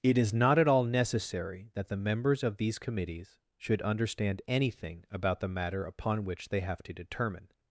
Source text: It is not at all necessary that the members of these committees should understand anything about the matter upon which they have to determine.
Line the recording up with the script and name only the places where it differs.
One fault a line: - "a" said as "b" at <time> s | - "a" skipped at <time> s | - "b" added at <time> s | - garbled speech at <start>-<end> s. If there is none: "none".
none